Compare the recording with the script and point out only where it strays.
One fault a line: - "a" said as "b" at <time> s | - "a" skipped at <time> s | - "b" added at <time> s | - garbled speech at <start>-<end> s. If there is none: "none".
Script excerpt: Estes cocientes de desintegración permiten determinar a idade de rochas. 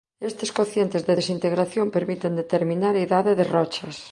none